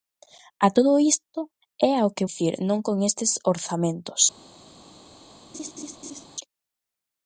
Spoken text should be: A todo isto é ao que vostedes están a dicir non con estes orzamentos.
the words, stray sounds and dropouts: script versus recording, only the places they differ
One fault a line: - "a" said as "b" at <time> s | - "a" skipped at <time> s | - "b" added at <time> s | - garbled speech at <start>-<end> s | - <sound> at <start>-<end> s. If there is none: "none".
- "vostedes están a" skipped at 2.3 s
- laugh at 5.5-6.3 s